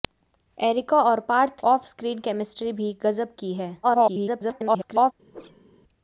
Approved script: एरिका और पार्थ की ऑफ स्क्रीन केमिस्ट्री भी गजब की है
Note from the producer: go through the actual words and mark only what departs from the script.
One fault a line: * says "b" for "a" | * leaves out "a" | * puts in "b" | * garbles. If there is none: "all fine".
* leaves out "की"
* garbles